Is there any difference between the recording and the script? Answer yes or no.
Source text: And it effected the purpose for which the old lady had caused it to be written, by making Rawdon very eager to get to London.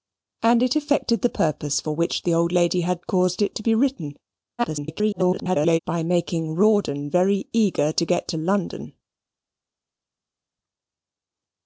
yes